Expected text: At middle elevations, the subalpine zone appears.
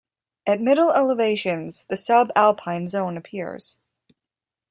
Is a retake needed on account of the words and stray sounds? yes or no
no